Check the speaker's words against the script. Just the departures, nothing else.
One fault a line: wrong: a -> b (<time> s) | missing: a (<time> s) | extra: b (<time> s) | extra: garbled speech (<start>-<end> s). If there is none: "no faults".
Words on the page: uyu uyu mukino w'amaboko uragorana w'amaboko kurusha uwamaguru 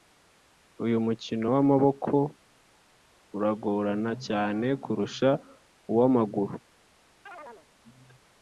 missing: uyu (1.0 s)
wrong: w'amaboko -> cyane (4.3 s)